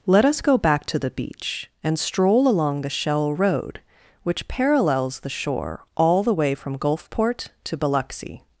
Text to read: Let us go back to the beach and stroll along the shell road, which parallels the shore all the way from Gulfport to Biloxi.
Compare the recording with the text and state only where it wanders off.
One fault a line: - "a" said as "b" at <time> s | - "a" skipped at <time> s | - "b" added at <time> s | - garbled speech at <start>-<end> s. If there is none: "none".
none